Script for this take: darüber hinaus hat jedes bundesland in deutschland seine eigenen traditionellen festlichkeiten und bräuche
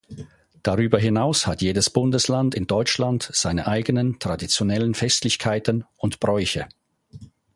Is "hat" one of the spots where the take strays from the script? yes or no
no